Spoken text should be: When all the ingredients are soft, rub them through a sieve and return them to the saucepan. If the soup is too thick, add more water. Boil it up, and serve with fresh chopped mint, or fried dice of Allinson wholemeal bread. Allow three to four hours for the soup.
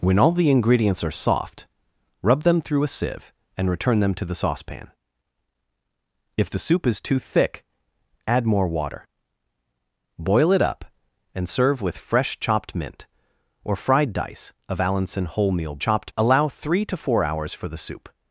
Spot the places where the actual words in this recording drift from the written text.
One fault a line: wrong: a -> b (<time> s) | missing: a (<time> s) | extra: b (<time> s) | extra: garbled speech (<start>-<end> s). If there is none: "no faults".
wrong: bread -> chopped (15.8 s)